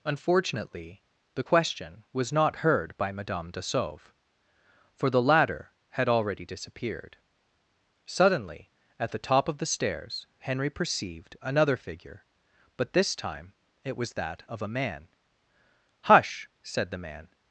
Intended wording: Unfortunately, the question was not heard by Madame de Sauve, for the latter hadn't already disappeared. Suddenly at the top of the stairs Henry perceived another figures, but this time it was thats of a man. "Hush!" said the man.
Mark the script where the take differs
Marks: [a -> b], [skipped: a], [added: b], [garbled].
Unfortunately, the question was not heard by Madame de Sauve, for the latter [hadn't -> had] already disappeared. Suddenly at the top of the stairs Henry perceived another [figures, -> figure] but this time it was [thats -> that] of a man. "Hush!" said the man.